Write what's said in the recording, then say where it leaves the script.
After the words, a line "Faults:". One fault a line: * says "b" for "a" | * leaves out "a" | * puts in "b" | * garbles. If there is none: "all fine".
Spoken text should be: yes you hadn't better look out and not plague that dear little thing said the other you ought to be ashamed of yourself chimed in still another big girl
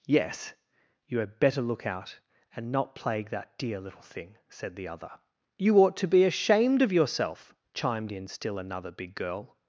yes you had better look out and not plague that dear little thing said the other you ought to be ashamed of yourself chimed in still another big girl
Faults:
* says "had" for "hadn't"